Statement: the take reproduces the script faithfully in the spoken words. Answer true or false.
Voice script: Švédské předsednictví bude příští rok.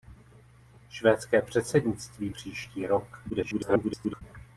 false